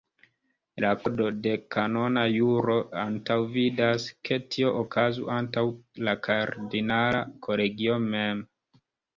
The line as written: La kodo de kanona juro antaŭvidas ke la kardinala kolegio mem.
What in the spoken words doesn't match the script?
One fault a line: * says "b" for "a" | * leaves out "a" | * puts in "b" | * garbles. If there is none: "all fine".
* puts in "tio okazu antaŭ"